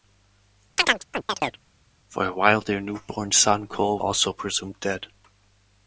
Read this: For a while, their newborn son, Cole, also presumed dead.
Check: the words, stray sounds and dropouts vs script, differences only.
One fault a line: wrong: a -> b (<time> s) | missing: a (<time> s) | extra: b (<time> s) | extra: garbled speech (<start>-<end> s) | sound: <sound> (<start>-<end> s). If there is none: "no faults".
sound: chirp (0.8-1.6 s)